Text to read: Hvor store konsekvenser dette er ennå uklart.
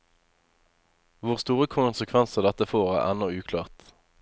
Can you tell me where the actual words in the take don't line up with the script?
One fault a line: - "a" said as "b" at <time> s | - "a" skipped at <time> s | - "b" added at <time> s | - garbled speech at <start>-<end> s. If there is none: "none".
- "får" added at 2.7 s